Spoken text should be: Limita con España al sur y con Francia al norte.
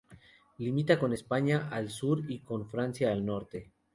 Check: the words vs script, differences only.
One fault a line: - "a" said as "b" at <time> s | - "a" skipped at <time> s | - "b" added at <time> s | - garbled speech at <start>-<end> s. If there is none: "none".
none